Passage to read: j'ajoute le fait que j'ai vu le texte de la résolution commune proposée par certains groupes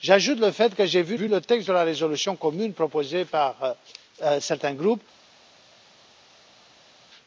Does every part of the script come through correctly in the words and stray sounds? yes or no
no